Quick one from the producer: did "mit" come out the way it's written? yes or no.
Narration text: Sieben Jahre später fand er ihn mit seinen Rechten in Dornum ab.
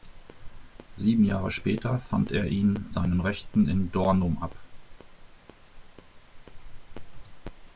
no